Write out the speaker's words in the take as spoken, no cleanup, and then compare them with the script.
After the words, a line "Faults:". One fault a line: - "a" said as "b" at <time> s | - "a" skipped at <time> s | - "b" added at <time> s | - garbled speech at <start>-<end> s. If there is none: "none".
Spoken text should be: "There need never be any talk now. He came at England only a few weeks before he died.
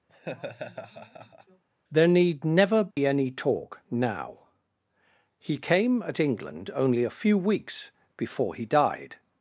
"There need never be any talk now. He came at England only a few weeks before he died.
Faults:
none